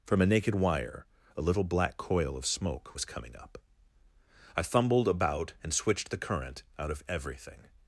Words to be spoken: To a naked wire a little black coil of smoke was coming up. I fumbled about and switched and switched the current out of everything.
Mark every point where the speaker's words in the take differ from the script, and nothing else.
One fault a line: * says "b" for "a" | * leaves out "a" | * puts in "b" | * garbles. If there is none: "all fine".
* says "From" for "To"
* leaves out "and switched"